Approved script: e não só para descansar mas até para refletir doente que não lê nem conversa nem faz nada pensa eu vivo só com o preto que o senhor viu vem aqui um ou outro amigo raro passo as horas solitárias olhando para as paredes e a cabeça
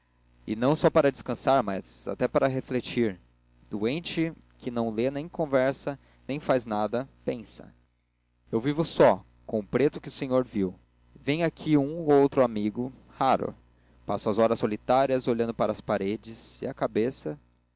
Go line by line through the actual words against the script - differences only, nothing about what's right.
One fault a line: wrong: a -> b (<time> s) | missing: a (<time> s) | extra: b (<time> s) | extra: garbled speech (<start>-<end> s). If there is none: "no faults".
no faults